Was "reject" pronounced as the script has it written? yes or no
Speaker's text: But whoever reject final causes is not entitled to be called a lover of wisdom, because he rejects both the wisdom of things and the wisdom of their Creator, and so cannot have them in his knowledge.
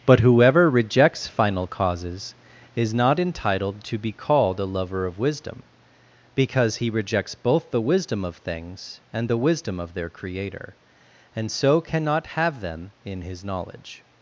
no